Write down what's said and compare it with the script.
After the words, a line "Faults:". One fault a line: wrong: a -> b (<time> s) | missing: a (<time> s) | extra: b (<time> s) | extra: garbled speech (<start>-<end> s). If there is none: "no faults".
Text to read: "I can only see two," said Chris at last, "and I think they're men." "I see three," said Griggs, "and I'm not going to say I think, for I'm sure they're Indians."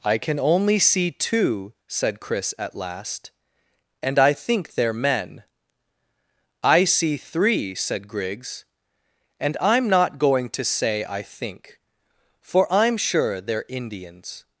"I can only see two," said Chris at last, "and I think they're men." "I see three," said Griggs, "and I'm not going to say I think, for I'm sure they're Indians."
Faults:
no faults